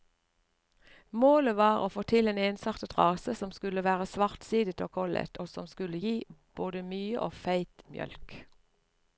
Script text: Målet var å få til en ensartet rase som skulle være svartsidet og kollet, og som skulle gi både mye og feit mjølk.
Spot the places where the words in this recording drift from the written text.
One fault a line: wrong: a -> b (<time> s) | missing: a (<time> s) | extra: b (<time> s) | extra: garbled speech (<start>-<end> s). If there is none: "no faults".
no faults